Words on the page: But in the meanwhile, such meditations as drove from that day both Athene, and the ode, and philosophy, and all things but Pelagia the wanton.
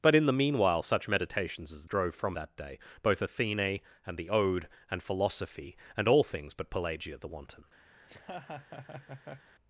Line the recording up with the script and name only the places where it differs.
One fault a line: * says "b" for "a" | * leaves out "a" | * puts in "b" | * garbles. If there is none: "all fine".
all fine